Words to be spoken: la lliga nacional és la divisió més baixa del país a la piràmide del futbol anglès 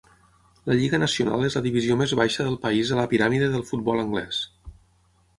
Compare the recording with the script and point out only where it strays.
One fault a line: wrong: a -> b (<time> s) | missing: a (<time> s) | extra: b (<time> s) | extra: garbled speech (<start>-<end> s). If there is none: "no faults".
no faults